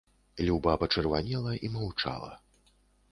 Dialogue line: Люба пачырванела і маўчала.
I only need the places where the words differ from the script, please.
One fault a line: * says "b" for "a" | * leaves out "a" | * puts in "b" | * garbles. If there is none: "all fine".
all fine